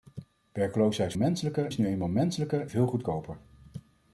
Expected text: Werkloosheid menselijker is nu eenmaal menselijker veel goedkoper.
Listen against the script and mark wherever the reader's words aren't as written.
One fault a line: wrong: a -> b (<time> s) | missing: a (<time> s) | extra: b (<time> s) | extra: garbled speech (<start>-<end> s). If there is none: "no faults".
no faults